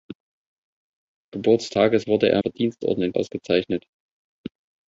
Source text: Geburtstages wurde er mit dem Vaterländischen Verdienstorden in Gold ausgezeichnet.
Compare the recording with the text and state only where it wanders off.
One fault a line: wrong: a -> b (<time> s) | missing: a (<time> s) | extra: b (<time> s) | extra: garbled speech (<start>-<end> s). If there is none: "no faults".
missing: mit dem Vaterländischen (2.4 s)
missing: Gold (3.1 s)